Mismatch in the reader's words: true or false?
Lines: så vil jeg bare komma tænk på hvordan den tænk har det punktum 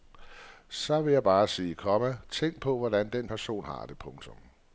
true